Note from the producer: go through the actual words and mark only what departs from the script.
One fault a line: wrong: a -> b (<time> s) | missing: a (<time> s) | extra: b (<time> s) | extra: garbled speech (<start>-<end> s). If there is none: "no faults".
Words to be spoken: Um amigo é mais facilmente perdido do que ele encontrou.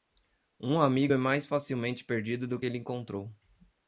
no faults